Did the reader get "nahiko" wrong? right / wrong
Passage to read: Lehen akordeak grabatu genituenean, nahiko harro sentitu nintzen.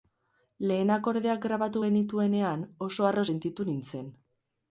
wrong